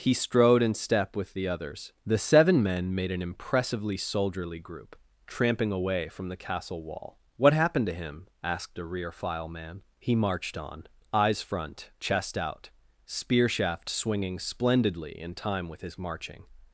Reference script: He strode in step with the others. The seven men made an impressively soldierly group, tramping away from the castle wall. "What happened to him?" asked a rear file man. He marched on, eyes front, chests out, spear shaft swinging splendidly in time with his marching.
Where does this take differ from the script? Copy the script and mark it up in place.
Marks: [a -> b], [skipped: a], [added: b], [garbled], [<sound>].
He strode in step with the others. The seven men made an impressively soldierly group, tramping away from the castle wall. "What happened to him?" asked a rear file man. He marched on, eyes front, [chests -> chest] out, spear shaft swinging splendidly in time with his marching.